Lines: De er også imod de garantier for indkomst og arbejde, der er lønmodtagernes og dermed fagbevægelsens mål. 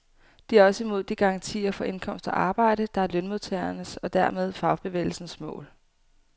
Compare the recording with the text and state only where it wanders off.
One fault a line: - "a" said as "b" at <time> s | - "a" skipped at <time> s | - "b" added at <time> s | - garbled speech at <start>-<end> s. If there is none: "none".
none